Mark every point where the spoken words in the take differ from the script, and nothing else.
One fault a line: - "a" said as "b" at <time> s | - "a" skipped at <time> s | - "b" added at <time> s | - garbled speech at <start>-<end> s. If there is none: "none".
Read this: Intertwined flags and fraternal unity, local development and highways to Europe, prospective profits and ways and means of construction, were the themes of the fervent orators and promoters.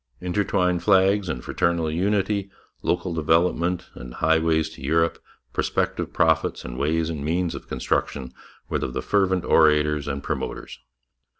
- "the themes" skipped at 8.8 s